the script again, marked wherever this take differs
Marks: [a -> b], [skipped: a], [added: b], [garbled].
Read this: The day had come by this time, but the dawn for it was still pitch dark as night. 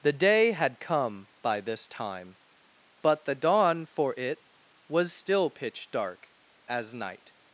The day had come by this time, but the dawn for it was still pitch dark as night.